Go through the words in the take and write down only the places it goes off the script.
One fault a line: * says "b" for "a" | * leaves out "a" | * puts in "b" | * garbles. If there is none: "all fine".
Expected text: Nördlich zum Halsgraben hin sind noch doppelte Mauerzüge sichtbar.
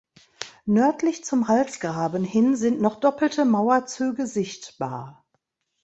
all fine